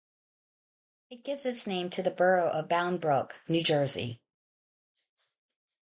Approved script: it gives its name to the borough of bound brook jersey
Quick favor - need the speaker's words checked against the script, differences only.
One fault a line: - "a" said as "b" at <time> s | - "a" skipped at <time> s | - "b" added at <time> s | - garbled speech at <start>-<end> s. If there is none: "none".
- "new" added at 3.5 s